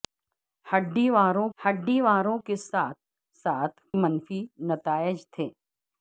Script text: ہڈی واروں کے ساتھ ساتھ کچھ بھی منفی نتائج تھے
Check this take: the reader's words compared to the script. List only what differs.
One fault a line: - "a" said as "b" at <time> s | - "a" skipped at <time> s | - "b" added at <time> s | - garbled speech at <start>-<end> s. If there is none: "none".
- "ہڈی واروں" added at 1.6 s
- "کچھ بھی" skipped at 3.8 s